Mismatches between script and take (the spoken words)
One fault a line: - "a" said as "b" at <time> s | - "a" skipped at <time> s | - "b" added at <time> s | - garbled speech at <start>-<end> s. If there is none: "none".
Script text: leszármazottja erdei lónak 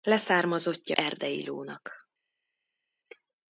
none